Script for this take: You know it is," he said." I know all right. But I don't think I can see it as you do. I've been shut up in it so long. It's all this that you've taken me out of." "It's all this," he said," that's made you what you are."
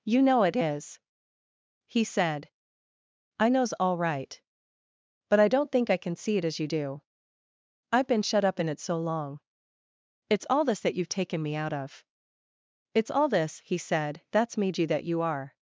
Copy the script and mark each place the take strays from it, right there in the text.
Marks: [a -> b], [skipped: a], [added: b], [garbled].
You know it is," he said." I [know -> knows] all right. But I don't think I can see it as you do. I've been shut up in it so long. It's all this that you've taken me out of." "It's all this," he said," that's made you [what -> that] you are."